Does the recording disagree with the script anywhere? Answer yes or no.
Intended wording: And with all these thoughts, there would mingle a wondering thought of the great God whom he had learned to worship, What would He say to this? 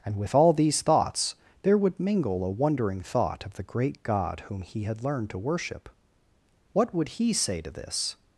no